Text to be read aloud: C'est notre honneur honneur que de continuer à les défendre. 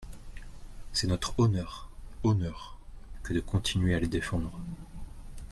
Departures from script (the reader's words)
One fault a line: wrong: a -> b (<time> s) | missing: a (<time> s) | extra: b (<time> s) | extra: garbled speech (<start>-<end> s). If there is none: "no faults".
no faults